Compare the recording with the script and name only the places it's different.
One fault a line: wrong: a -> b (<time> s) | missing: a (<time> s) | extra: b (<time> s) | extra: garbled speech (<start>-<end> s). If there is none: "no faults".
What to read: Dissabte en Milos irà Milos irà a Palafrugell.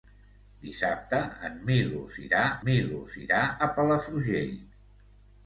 no faults